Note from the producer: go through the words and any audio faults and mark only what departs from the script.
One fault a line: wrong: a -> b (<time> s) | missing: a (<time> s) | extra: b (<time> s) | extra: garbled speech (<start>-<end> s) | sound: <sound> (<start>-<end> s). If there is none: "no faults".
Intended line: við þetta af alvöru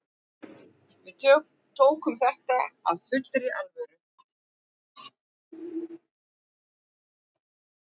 extra: tókum (1.8 s)
extra: fullri (3.1 s)